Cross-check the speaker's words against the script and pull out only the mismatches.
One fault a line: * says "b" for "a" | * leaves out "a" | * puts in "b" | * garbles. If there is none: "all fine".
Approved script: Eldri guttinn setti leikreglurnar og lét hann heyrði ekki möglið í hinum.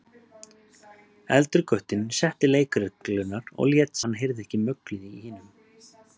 all fine